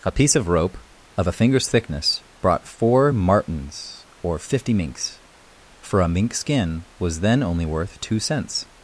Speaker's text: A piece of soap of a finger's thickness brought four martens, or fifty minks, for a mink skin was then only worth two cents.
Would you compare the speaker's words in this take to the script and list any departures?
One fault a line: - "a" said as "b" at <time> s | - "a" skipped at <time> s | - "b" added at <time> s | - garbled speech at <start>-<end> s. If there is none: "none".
- "soap" said as "rope" at 0.5 s